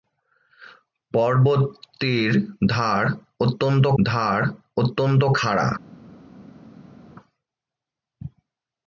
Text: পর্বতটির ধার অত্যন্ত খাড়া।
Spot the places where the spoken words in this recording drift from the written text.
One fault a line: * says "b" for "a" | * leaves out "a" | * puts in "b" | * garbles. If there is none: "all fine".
* puts in "ধার অত্যন্ত"